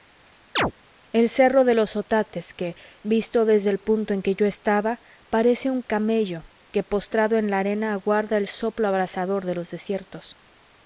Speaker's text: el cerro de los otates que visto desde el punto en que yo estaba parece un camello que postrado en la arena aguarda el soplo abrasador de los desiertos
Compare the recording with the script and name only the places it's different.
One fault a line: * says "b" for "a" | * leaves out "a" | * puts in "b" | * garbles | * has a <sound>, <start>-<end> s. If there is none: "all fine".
* has a chirp, 0.6-0.7 s